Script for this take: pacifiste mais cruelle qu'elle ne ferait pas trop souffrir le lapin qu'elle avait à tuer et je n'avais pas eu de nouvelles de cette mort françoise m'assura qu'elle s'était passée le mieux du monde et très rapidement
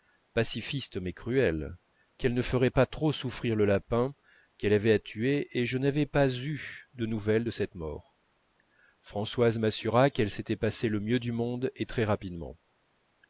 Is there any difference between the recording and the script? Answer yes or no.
no